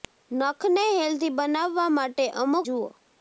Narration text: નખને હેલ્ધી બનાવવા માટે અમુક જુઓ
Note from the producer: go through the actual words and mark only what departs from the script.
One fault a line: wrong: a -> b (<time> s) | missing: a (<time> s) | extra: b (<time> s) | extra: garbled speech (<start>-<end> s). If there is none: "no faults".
no faults